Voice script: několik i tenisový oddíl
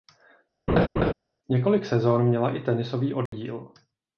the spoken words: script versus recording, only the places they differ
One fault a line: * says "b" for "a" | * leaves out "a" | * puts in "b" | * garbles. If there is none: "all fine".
* puts in "sezón měla"